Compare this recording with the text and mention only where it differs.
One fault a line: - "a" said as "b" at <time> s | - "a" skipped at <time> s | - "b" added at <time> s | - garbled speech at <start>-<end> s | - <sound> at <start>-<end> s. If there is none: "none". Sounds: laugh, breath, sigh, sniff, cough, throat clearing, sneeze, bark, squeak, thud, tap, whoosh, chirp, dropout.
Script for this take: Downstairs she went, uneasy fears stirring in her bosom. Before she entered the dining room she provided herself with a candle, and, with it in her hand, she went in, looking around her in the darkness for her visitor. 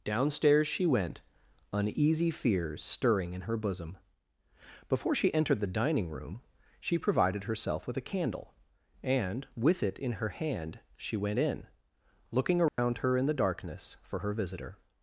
- dropout at 12.7-12.8 s